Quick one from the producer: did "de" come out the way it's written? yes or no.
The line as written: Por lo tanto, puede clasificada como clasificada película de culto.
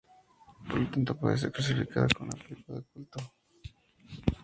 yes